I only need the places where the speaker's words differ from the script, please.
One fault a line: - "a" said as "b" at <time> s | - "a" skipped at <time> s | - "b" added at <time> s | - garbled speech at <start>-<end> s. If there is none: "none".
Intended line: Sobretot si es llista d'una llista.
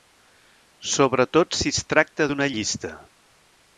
- "llista" said as "tracta" at 1.9 s